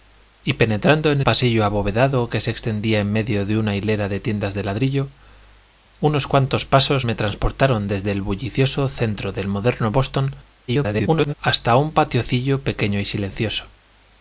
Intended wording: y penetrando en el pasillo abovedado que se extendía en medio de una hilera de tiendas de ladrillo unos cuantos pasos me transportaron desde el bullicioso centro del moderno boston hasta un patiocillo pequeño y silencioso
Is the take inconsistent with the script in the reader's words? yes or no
yes